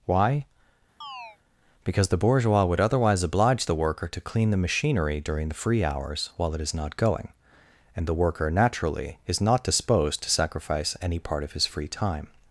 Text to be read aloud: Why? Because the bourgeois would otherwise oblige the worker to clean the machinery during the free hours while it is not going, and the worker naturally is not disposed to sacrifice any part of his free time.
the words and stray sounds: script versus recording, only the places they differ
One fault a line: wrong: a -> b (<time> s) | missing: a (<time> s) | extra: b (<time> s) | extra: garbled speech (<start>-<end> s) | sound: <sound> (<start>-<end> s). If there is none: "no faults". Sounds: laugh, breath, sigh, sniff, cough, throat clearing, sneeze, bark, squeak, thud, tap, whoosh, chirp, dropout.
sound: chirp (1.0-1.4 s)